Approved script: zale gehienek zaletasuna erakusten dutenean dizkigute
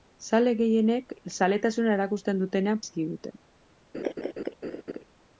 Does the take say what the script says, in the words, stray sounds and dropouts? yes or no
no